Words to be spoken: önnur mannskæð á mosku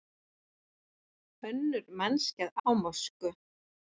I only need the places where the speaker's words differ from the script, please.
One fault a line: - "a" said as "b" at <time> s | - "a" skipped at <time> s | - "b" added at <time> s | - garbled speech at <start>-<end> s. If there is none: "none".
none